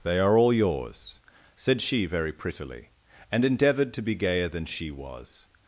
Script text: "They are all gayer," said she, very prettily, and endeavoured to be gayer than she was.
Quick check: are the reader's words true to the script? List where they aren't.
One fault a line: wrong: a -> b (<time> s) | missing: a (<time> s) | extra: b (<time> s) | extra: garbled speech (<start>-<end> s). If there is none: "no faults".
wrong: gayer -> yours (0.5 s)